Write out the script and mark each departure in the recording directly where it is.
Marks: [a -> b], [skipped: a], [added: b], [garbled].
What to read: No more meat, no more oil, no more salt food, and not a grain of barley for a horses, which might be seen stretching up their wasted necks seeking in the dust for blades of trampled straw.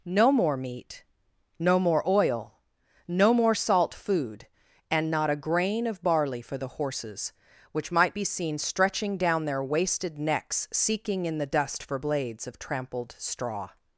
No more meat, no more oil, no more salt food, and not a grain of barley for [a -> the] horses, which might be seen stretching [up -> down] their wasted necks seeking in the dust for blades of trampled straw.